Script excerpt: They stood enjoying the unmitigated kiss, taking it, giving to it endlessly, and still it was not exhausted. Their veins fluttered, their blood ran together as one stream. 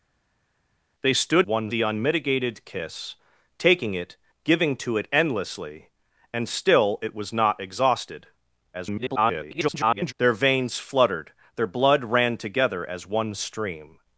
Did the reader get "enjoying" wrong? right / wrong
wrong